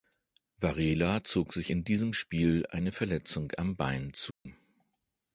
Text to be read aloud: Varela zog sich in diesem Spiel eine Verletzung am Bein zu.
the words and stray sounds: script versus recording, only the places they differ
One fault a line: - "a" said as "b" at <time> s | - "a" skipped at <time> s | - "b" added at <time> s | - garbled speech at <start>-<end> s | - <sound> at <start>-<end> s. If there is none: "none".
- dropout at 4.3-4.5 s